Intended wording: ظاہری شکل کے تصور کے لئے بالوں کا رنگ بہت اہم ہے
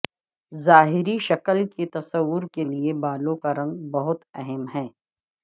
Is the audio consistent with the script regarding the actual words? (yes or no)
yes